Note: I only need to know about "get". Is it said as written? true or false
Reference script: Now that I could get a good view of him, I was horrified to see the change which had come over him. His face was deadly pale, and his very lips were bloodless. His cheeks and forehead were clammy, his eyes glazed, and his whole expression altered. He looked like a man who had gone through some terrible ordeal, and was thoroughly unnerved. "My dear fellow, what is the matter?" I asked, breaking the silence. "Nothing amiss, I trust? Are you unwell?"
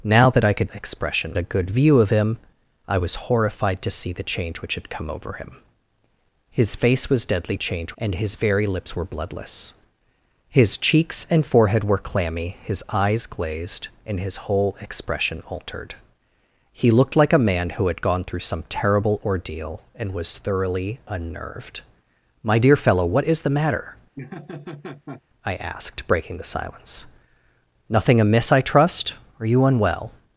false